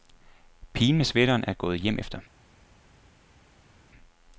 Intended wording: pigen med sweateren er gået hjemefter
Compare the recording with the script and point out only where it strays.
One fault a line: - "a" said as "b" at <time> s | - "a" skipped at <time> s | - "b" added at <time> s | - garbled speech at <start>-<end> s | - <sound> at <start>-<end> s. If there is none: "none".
none